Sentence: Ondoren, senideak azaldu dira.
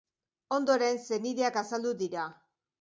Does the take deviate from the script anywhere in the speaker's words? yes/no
no